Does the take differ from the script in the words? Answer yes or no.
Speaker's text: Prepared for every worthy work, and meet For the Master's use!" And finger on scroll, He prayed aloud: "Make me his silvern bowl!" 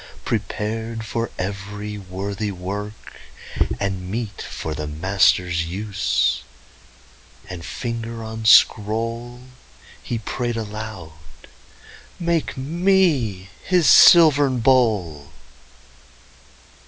no